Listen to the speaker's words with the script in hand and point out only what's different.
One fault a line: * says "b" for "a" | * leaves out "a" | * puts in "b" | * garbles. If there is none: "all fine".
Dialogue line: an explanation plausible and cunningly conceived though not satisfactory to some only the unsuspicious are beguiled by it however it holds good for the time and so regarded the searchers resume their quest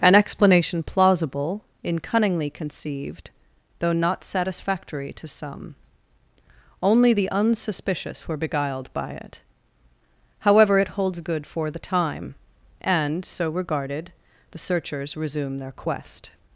* says "in" for "and"
* says "were" for "are"